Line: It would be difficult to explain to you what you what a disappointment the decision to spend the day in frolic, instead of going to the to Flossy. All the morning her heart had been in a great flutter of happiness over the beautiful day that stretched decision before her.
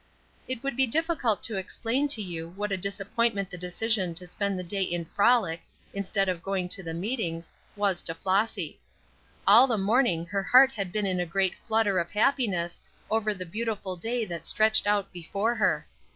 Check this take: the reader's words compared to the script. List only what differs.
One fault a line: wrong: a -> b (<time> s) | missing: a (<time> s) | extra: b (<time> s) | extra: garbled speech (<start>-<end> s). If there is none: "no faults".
missing: you what (2.7 s)
extra: meetings was (7.0 s)
wrong: decision -> out (14.9 s)